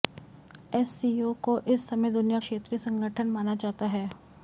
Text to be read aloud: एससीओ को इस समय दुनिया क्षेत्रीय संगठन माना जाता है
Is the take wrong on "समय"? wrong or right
right